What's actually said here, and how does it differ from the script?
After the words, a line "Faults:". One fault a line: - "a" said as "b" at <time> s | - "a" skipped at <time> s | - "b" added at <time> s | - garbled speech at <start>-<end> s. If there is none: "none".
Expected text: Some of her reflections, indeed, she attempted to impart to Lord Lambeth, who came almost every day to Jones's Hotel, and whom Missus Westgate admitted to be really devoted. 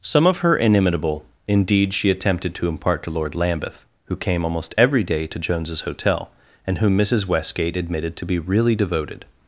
Some of her inimitable, indeed, she attempted to impart to Lord Lambeth, who came almost every day to Jones's Hotel, and whom Missus Westgate admitted to be really devoted.
Faults:
- "reflections" said as "inimitable" at 0.6 s